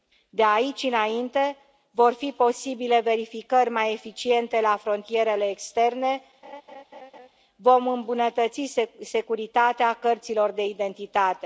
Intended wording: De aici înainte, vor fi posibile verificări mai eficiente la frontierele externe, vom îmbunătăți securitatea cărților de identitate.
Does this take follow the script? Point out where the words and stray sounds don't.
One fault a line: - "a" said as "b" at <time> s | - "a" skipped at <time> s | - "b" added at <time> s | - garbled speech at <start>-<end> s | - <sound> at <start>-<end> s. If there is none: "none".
- laugh at 6.4-7.3 s